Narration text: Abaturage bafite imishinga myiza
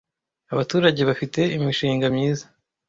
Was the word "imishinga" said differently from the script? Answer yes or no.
no